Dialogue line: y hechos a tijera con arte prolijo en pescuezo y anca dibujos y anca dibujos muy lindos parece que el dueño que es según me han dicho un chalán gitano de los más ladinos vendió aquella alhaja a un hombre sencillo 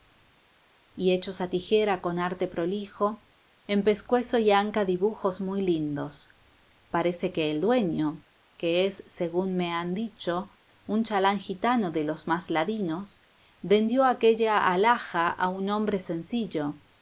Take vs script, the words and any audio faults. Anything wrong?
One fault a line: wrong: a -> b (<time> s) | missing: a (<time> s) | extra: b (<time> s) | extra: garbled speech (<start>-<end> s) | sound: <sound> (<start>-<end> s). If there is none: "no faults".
missing: y anca dibujos (5.4 s)